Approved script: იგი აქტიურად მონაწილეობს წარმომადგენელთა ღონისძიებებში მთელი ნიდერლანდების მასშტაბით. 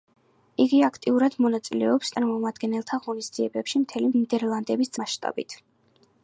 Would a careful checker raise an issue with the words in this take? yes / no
no